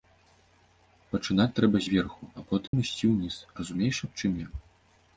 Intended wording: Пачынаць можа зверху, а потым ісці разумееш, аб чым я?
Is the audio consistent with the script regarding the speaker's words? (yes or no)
no